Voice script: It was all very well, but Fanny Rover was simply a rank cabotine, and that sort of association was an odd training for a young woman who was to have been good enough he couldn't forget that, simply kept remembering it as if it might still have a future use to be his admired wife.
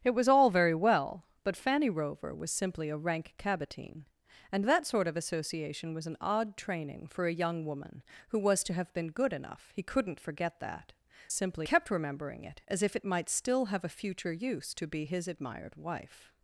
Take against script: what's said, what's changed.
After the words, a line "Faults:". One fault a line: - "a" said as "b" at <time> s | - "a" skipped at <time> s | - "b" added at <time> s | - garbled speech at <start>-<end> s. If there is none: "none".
It was all very well, but Fanny Rover was simply a rank cabotine, and that sort of association was an odd training for a young woman who was to have been good enough he couldn't forget that, simply kept remembering it as if it might still have a future use to be his admired wife.
Faults:
none